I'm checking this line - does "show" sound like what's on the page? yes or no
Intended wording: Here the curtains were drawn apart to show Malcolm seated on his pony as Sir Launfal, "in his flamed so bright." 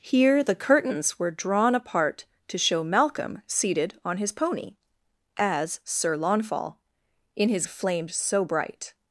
yes